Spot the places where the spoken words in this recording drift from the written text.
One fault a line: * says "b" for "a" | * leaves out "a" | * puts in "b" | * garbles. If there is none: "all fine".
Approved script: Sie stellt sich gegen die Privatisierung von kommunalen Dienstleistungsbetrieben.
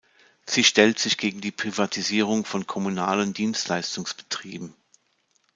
all fine